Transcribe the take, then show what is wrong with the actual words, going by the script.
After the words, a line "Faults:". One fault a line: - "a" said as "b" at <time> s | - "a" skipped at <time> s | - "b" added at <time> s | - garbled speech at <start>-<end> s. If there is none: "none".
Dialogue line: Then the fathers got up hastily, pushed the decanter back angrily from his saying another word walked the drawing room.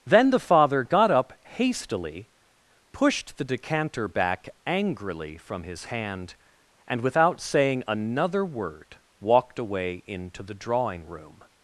Then the father got up hastily, pushed the decanter back angrily from his hand, and without saying another word walked away into the drawing room.
Faults:
- "fathers" said as "father" at 0.4 s
- "hand and without" added at 5.8 s
- "away into" added at 9.6 s